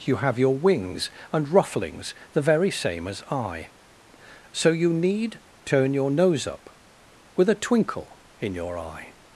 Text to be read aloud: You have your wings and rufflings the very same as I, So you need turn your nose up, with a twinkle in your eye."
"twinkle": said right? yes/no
yes